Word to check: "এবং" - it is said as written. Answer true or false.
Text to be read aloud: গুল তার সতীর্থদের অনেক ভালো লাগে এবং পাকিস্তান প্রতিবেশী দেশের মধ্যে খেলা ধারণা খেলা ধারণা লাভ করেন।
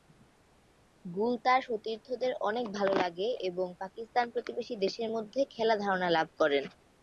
true